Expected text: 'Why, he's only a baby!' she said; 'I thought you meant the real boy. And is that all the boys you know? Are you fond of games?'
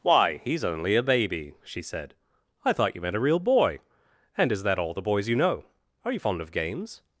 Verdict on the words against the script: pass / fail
fail